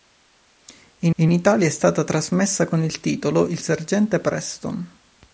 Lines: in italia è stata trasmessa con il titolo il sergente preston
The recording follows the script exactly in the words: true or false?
false